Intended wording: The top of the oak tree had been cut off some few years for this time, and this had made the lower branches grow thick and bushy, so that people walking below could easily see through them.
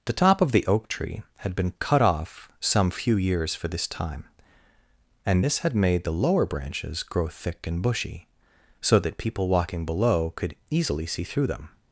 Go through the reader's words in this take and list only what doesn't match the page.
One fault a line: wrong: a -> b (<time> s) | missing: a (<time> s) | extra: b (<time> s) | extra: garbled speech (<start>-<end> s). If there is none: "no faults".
no faults